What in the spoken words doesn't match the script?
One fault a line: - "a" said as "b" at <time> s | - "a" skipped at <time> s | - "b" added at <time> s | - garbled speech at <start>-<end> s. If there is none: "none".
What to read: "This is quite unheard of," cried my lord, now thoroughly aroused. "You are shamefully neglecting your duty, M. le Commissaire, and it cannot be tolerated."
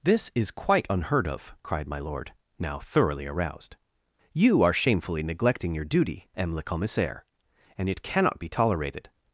none